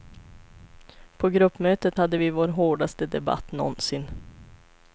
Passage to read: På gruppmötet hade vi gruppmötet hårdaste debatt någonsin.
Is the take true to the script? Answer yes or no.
no